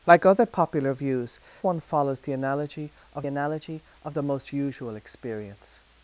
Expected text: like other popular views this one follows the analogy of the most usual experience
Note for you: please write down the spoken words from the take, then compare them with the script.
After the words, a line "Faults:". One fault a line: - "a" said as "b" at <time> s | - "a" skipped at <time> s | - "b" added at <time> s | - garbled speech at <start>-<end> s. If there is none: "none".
like other popular views one follows the analogy of analogy of the most usual experience
Faults:
- "this" skipped at 1.4 s
- "analogy of" added at 3.2 s